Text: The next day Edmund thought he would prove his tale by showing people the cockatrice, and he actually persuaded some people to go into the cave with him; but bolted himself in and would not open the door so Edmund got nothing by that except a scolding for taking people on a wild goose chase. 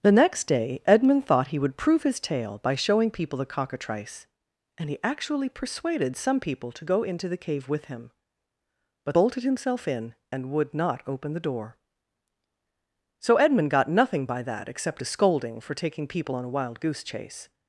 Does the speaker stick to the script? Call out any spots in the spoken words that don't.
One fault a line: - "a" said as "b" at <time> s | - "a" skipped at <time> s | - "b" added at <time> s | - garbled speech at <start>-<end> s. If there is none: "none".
none